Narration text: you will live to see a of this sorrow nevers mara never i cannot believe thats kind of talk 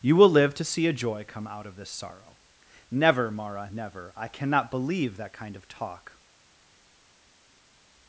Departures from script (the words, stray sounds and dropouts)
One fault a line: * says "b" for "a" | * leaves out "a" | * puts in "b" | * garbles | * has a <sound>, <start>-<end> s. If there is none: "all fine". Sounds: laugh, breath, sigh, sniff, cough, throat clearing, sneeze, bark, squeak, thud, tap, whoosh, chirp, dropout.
* puts in "joy come out"
* says "never" for "nevers"
* says "that" for "thats"